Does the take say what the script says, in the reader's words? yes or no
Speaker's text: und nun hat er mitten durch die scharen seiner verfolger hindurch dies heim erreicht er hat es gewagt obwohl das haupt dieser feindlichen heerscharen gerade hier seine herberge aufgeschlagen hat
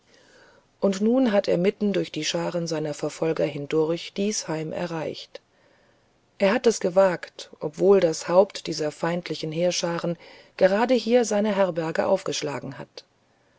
yes